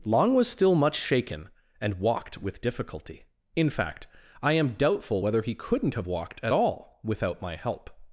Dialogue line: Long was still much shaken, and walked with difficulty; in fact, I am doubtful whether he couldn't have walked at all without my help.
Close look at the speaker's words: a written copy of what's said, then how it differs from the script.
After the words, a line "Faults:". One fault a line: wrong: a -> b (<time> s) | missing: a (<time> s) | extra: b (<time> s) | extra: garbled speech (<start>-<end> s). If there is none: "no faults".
Long was still much shaken, and walked with difficulty; in fact, I am doubtful whether he couldn't have walked at all without my help.
Faults:
no faults